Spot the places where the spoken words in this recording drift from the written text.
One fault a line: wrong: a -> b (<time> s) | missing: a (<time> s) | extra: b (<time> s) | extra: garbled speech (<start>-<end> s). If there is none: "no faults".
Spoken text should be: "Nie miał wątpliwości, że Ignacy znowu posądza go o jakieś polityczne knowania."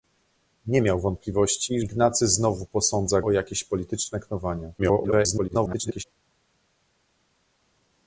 missing: że (1.8 s)
missing: go (3.2 s)
extra: garbled speech (4.8-6.0 s)